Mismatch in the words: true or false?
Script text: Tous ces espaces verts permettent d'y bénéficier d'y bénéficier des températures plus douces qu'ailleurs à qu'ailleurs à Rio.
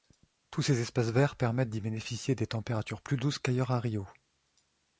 true